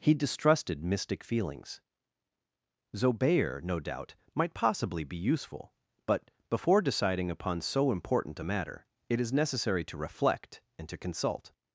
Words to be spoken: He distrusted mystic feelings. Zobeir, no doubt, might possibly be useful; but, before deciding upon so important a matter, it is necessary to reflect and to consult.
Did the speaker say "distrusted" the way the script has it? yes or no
yes